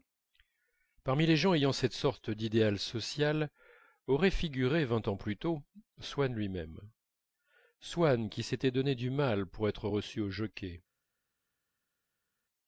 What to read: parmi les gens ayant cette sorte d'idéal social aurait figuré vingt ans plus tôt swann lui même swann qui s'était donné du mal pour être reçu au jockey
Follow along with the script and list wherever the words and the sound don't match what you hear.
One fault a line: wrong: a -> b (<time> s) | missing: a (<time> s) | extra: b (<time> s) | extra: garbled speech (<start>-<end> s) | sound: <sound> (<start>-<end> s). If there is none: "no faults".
no faults